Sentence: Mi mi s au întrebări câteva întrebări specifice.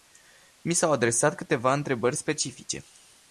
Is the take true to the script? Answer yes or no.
no